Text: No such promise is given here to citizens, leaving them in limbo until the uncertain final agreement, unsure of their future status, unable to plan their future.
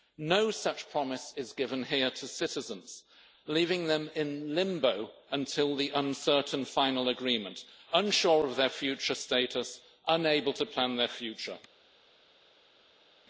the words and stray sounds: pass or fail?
pass